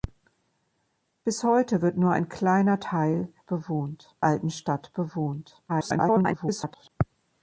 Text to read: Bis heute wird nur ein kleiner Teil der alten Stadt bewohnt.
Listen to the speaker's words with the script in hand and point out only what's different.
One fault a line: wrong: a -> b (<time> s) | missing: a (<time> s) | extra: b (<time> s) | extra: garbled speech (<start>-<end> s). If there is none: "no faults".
wrong: der -> bewohnt (3.5 s)
extra: garbled speech (5.7-6.9 s)